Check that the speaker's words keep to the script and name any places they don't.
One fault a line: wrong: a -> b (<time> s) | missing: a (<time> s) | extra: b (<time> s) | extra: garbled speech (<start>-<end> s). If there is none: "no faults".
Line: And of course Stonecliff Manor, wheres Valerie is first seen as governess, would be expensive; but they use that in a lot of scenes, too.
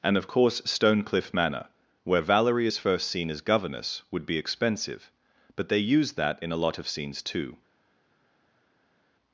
wrong: wheres -> where (2.0 s)